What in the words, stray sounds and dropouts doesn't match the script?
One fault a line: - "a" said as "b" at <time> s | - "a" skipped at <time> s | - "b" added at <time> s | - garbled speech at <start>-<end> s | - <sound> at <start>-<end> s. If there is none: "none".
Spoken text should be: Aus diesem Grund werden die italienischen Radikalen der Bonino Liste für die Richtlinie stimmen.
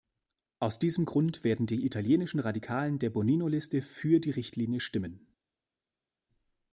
none